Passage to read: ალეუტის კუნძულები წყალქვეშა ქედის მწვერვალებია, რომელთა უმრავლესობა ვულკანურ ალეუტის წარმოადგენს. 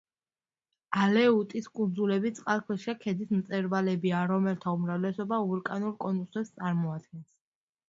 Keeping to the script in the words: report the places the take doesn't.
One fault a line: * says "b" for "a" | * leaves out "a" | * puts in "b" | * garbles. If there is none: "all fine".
* says "კონუსებს" for "ალეუტის"